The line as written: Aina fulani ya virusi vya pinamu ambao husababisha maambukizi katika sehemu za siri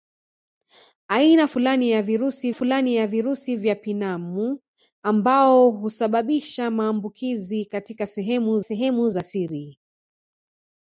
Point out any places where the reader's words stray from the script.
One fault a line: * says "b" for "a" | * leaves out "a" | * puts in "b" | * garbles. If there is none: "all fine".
* puts in "fulani ya virusi"
* puts in "sehemu"